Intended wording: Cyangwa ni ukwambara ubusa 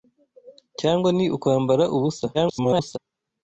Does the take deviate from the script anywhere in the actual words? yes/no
yes